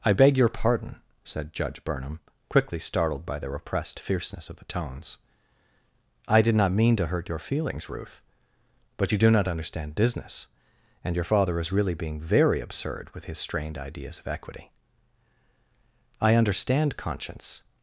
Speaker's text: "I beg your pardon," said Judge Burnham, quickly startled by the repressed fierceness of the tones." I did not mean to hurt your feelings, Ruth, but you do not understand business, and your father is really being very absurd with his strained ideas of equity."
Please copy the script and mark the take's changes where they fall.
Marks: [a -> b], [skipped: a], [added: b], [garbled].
"I beg your pardon," said Judge Burnham, quickly startled by the repressed fierceness of the tones." I did not mean to hurt your feelings, Ruth, but you do not understand business, and your father is really being very absurd with his strained ideas of equity." [added: I understand conscience]